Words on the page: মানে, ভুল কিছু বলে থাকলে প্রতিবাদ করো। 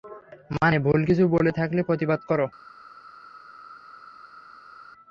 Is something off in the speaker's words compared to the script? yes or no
no